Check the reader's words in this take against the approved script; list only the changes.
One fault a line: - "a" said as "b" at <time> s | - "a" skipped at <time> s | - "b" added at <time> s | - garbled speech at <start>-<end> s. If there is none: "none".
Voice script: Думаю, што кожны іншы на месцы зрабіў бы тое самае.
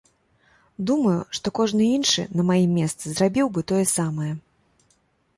- "маім" added at 2.5 s